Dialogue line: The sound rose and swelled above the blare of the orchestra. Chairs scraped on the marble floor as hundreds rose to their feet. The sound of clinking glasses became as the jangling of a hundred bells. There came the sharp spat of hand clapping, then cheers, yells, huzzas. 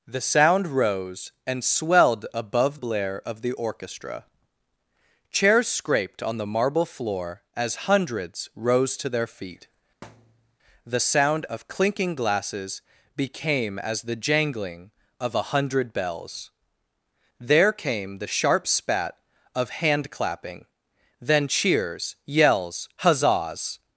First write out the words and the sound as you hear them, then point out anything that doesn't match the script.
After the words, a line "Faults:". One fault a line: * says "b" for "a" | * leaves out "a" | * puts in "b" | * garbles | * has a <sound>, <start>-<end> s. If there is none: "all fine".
The sound rose and swelled above blare of the orchestra. Chairs scraped on the marble floor as hundreds rose to their feet. The sound of clinking glasses became as the jangling of a hundred bells. There came the sharp spat of hand clapping, then cheers, yells, huzzas.
Faults:
* leaves out "the"
* has a thud, 10.0-10.6 s